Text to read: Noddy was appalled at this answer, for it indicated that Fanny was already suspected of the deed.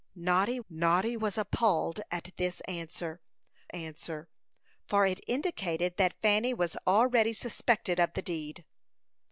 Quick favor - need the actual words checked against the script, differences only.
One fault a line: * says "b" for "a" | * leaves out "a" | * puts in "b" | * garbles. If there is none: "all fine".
* puts in "noddy"
* puts in "answer"